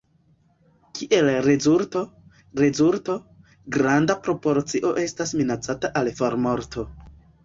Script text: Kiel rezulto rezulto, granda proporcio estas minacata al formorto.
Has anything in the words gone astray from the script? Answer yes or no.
no